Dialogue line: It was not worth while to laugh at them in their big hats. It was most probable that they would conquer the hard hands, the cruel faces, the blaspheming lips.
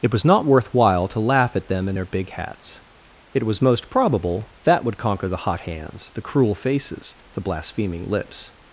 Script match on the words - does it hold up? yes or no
no